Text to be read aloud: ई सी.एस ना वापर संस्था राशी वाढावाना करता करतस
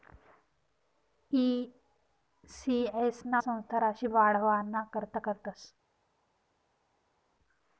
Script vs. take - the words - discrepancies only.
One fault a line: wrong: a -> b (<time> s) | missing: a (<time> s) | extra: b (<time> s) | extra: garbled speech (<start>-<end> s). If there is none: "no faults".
missing: वापर (3.4 s)